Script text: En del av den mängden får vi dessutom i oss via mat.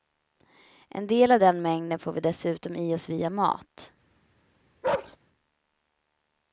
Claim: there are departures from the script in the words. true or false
false